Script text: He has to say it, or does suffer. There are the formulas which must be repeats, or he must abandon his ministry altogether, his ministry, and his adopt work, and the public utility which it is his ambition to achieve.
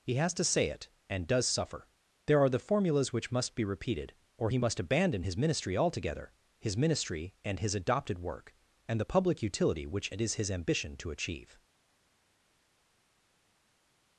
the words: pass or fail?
fail